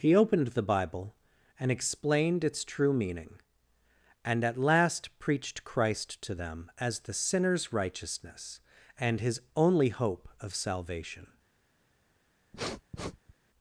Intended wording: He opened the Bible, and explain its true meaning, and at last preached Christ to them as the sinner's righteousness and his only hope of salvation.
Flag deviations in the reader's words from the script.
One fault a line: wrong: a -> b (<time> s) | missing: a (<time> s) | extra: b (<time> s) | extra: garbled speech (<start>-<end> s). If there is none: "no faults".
wrong: explain -> explained (1.7 s)